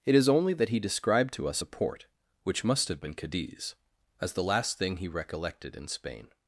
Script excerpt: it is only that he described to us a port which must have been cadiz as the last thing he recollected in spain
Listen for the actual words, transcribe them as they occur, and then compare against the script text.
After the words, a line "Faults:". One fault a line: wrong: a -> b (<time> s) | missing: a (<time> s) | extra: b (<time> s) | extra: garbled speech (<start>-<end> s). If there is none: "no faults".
it is only that he described to us a port which must have been cadiz as the last thing he recollected in spain
Faults:
no faults